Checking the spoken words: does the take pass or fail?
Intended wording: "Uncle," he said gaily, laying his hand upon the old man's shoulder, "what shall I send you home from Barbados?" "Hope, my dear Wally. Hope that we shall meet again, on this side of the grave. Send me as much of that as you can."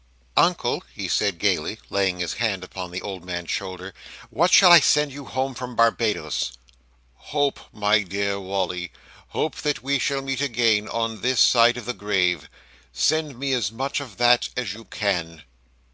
pass